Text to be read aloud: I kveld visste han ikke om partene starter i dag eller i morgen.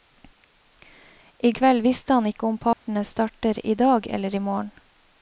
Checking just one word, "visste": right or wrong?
right